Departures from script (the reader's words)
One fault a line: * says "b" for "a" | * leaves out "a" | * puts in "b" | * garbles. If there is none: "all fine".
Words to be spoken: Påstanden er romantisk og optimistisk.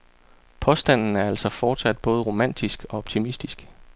* puts in "altså fortsat både"